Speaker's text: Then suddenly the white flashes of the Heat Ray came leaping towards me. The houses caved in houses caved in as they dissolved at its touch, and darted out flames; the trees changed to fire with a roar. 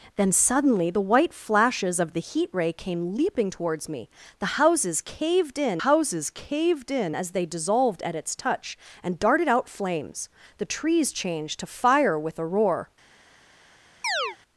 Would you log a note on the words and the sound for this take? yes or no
yes